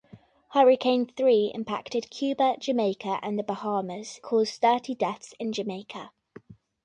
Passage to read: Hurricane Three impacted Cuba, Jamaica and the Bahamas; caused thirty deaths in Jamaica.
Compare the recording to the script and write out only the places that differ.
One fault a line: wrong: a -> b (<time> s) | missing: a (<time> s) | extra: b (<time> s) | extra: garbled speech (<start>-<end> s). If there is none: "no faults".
no faults